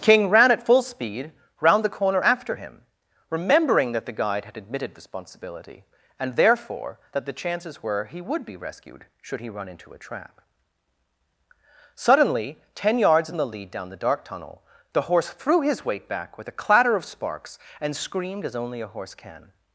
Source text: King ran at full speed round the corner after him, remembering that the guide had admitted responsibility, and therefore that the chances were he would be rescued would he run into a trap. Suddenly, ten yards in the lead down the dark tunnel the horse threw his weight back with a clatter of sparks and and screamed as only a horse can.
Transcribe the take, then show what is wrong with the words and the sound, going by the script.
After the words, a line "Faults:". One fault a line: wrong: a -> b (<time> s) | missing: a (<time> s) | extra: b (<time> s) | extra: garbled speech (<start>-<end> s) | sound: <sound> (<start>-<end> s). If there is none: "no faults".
King ran at full speed round the corner after him, remembering that the guide had admitted responsibility, and therefore that the chances were he would be rescued should he run into a trap. Suddenly, ten yards in the lead down the dark tunnel the horse threw his weight back with a clatter of sparks and screamed as only a horse can.
Faults:
wrong: would -> should (9.2 s)
missing: and (17.9 s)